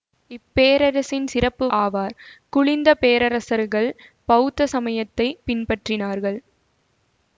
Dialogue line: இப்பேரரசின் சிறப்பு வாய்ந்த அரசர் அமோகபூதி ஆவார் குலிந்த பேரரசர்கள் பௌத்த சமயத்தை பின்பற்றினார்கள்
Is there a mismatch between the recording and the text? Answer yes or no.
yes